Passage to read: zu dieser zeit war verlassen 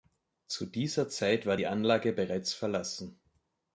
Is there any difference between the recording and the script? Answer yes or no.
yes